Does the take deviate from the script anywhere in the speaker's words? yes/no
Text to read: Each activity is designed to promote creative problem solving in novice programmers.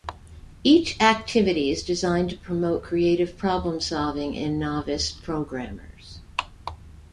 no